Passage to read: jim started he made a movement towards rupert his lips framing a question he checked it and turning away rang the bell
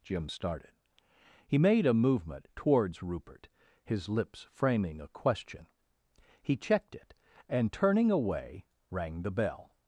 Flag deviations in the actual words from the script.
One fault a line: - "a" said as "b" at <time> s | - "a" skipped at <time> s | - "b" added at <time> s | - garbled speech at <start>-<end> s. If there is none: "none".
none